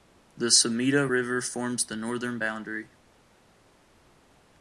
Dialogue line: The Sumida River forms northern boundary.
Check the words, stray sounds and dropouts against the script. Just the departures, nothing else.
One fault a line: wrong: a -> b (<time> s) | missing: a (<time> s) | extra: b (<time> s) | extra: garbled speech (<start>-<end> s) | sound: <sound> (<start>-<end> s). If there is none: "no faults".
extra: the (1.8 s)